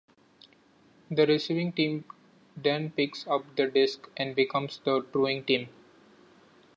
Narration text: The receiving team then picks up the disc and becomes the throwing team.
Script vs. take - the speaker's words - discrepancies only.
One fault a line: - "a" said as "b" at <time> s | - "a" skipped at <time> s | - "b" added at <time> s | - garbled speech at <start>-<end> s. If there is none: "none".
none